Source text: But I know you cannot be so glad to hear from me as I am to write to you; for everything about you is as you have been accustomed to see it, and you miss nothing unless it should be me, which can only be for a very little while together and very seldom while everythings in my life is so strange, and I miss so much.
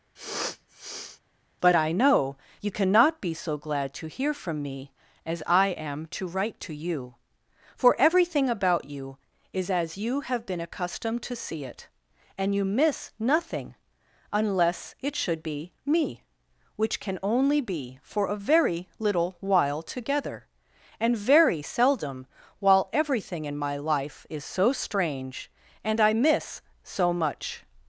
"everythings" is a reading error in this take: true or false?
true